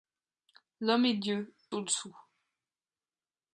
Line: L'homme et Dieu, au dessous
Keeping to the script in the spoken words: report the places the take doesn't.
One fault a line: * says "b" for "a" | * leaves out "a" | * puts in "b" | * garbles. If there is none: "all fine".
all fine